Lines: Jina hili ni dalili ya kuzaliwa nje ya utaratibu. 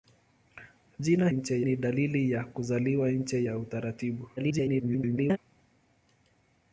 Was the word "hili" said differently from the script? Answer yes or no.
yes